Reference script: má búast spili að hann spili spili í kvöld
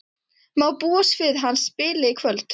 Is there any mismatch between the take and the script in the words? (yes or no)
yes